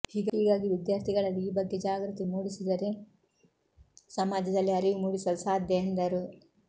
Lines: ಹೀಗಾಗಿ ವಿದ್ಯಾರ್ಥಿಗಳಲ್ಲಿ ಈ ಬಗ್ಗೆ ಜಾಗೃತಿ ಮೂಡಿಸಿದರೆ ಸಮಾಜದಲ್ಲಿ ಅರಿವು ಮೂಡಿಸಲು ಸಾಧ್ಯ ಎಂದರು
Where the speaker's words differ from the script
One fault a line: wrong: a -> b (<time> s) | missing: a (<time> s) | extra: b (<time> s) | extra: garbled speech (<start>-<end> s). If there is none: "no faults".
no faults